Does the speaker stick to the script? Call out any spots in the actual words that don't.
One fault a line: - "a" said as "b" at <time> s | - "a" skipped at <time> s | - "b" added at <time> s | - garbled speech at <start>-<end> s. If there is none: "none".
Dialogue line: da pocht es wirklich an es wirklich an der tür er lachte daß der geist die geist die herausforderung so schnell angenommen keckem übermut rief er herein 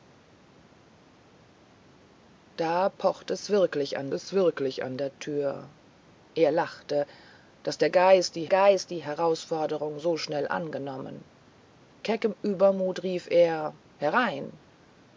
none